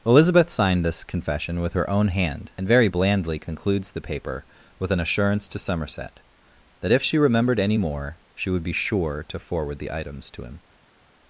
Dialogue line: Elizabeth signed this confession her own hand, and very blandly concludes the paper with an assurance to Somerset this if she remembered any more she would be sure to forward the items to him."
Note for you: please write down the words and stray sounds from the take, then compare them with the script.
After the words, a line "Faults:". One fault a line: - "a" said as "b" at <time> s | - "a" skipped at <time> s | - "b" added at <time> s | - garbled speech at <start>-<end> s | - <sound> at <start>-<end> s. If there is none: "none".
Elizabeth signed this confession with her own hand, and very blandly concludes the paper with an assurance to Somerset that if she remembered any more she would be sure to forward the items to him."
Faults:
- "with" added at 1.6 s
- "this" said as "that" at 6.8 s